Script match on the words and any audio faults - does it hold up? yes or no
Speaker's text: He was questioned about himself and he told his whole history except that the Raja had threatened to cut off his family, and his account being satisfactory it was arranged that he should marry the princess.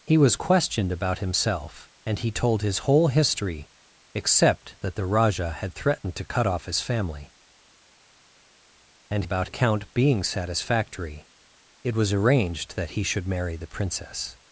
no